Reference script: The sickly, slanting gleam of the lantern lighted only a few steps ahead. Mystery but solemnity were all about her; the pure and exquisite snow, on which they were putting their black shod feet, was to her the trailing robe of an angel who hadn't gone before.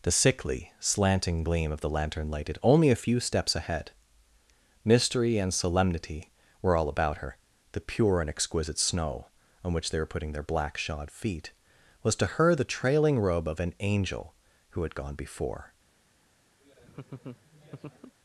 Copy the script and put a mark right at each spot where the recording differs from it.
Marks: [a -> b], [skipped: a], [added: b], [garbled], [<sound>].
The sickly, slanting gleam of the lantern lighted only a few steps ahead. Mystery [but -> and] solemnity were all about her; the pure and exquisite snow, on which they were putting their black shod feet, was to her the trailing robe of an angel who [hadn't -> had] gone before. [laugh]